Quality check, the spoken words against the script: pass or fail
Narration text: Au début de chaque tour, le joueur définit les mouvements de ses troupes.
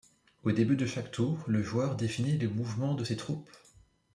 pass